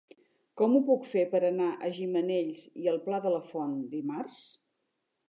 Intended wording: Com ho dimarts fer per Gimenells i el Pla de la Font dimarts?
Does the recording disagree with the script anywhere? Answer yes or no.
yes